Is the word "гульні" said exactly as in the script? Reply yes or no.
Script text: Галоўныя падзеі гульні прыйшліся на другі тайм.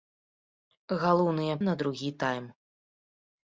no